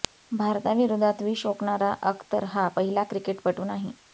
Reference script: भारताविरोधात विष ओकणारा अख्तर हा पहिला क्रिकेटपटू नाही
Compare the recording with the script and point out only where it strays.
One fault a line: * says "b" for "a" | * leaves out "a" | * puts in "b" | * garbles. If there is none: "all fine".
all fine